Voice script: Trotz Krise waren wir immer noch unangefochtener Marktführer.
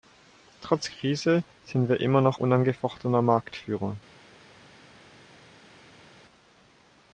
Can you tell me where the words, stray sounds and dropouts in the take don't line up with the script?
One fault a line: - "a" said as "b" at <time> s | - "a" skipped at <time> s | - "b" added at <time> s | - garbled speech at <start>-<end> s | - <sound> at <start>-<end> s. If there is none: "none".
- "waren" said as "sind" at 1.6 s